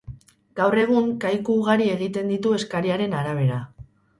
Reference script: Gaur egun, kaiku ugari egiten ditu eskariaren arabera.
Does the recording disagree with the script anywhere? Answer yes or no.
no